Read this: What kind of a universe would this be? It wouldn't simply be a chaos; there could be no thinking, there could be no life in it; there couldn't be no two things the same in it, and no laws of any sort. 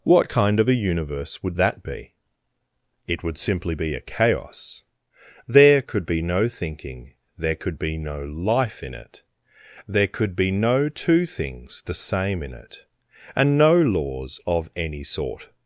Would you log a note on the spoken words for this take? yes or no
yes